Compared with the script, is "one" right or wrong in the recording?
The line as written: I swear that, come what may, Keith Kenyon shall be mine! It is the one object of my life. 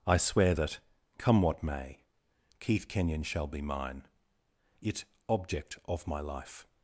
wrong